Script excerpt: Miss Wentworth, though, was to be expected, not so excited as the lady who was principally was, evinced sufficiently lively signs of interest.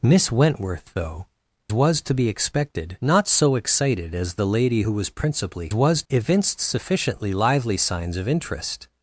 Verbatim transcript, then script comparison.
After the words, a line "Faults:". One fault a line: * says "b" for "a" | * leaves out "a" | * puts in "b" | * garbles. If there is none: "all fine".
Miss Wentworth, though, was to be expected, not so excited as the lady who was principally was, evinced sufficiently lively signs of interest.
Faults:
all fine